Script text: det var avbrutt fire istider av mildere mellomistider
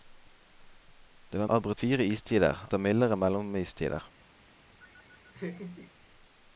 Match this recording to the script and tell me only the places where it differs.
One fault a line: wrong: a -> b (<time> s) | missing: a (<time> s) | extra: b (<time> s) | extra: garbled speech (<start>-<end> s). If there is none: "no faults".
no faults